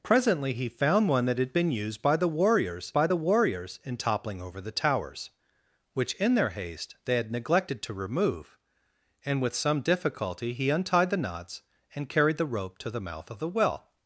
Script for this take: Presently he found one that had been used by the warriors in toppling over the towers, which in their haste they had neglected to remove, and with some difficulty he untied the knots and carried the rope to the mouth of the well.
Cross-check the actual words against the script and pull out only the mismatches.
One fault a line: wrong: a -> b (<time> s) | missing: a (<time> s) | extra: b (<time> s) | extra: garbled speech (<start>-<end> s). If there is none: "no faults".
extra: by the warriors (2.9 s)